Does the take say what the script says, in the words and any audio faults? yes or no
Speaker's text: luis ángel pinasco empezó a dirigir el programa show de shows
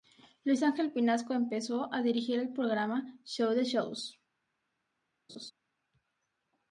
no